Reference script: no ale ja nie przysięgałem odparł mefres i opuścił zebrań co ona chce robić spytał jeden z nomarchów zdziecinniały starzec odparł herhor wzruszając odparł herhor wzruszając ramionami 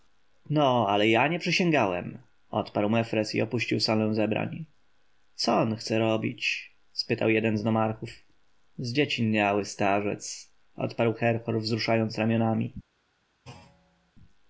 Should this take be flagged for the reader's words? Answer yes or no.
yes